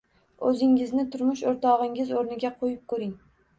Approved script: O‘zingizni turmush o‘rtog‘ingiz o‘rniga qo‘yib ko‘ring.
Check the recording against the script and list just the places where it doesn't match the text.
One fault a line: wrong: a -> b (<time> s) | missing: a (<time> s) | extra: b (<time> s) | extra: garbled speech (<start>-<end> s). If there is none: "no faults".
no faults